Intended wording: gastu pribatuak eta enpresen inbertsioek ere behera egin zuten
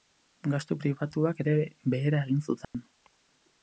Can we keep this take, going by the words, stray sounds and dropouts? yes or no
no